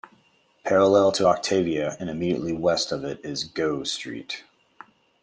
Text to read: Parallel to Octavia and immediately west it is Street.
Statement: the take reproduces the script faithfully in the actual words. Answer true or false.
false